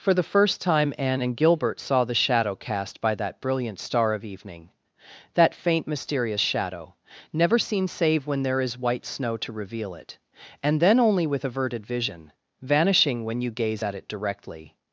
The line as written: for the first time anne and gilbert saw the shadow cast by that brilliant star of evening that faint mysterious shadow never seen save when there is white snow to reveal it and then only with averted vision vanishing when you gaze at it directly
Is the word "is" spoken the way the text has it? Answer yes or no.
yes